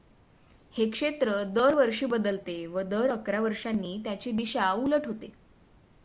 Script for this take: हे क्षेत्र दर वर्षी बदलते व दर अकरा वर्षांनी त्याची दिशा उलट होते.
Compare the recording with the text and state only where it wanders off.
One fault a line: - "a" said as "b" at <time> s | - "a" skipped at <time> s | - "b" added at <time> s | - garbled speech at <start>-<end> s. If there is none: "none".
none